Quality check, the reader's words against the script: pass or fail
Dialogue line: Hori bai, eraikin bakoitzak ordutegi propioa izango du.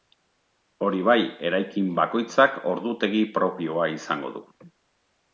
pass